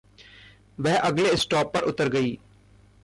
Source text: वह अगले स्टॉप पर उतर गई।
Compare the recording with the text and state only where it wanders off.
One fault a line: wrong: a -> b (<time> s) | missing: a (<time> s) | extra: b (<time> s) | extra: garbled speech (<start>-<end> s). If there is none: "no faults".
no faults